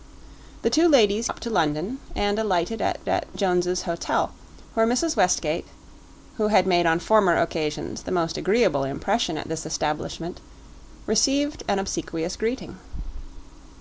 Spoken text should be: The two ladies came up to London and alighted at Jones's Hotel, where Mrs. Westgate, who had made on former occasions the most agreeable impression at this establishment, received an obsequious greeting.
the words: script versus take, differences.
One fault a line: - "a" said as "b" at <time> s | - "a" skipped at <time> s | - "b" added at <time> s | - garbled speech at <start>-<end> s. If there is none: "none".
- "came" skipped at 1.3 s
- "at" added at 3.1 s